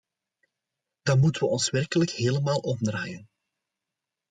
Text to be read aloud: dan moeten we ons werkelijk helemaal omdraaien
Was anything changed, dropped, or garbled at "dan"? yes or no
no